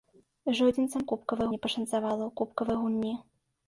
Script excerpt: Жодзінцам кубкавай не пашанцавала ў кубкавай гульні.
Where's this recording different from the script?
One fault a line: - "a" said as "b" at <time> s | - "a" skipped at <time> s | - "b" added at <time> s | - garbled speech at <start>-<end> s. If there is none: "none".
none